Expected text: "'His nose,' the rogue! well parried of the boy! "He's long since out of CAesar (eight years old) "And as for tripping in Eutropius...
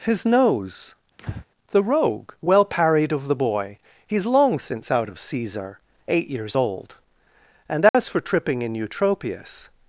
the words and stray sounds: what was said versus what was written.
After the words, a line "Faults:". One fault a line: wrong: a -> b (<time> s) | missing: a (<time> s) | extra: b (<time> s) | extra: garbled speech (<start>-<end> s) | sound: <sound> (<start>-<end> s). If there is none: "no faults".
"'His nose,' the rogue! well parried of the boy! "He's long since out of CAesar (eight years old) "And as for tripping in Eutropius...
Faults:
sound: breath (1.2-1.5 s)
sound: dropout (7.9-7.9 s)